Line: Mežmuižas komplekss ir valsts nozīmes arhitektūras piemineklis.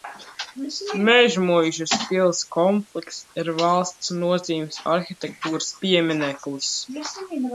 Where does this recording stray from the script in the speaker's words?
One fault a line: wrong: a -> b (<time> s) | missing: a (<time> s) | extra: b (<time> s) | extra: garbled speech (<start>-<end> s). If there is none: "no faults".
extra: pils (2.0 s)